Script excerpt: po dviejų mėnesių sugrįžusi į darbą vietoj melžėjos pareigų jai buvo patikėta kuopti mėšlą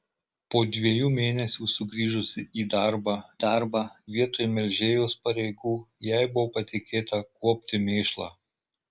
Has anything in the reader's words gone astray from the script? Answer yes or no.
yes